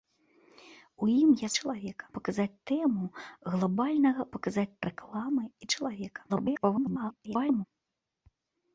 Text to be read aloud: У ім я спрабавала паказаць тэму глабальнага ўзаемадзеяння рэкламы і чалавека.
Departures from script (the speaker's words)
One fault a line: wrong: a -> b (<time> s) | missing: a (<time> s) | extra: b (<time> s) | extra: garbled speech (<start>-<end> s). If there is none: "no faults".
wrong: спрабавала -> чалавека (1.6 s)
wrong: ўзаемадзеяння -> паказаць (4.4 s)
extra: garbled speech (6.3-7.6 s)